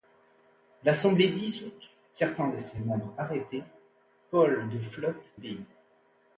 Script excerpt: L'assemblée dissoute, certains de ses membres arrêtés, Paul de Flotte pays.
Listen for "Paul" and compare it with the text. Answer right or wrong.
right